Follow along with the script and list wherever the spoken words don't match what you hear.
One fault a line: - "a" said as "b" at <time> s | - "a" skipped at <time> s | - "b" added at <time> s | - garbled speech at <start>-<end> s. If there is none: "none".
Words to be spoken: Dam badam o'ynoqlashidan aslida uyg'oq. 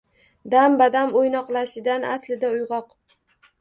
none